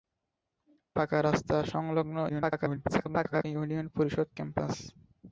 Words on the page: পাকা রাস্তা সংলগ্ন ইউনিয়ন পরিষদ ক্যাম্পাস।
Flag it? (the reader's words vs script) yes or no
yes